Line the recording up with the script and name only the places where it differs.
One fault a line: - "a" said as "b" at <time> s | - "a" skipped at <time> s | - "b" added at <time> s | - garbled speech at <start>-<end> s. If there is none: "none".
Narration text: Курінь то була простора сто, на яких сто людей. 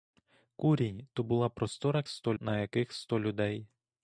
none